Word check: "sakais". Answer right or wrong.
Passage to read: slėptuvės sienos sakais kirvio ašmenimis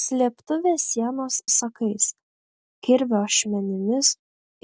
right